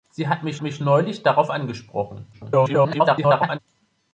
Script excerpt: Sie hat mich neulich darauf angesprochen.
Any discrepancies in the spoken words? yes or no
yes